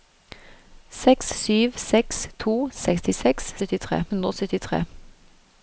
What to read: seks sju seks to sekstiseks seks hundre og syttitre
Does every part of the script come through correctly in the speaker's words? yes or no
no